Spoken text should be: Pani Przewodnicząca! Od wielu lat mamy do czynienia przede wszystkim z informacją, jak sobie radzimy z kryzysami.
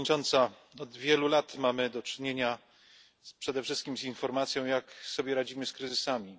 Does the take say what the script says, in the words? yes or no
yes